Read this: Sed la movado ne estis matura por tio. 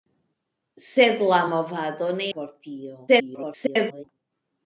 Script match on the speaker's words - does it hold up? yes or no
no